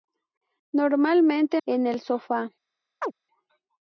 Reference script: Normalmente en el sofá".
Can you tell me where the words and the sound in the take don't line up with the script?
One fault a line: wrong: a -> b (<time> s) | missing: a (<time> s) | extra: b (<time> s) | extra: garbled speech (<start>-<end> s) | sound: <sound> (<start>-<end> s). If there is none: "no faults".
sound: chirp (3.0-3.1 s)